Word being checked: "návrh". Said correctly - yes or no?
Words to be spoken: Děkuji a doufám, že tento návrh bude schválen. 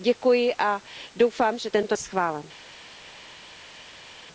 no